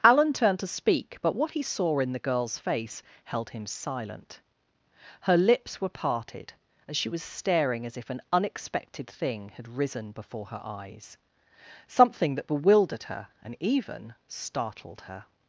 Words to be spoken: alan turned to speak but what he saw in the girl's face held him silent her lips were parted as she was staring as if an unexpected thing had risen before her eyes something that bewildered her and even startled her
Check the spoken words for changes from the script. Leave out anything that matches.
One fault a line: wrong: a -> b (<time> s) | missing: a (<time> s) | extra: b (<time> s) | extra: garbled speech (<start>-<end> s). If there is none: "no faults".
no faults